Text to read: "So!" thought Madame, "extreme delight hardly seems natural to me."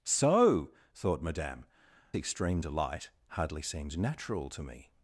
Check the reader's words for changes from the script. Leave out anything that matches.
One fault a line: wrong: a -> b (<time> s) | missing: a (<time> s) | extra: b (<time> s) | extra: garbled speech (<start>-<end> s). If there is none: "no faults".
no faults